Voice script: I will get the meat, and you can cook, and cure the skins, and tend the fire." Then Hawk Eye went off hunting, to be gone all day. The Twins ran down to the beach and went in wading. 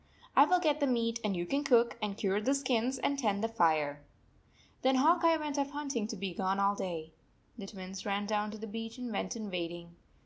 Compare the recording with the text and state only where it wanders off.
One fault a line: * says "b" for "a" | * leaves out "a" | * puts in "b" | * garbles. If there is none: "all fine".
all fine